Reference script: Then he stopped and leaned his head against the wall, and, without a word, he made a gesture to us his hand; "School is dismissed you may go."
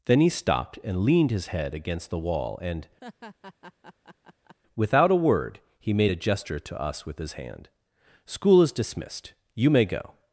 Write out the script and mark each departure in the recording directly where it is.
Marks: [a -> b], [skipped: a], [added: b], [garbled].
Then he stopped and leaned his head against the wall, and, without a word, he made a gesture to us [added: with] his hand; "School is dismissed you may go."